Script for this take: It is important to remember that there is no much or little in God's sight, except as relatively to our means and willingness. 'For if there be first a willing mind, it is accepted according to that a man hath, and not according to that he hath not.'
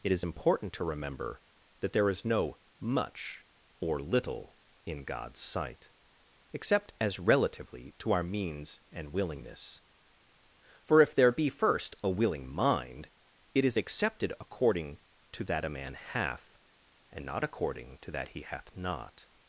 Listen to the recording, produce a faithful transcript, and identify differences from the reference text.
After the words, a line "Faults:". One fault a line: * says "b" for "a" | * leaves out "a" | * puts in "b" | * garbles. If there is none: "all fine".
It is important to remember that there is no much or little in God's sight, except as relatively to our means and willingness. 'For if there be first a willing mind, it is accepted according to that a man hath, and not according to that he hath not.'
Faults:
all fine